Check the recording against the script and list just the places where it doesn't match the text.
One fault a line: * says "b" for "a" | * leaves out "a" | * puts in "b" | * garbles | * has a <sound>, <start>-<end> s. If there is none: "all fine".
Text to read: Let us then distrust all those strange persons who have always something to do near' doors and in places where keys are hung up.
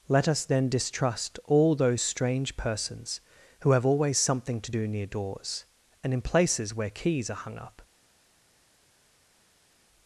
all fine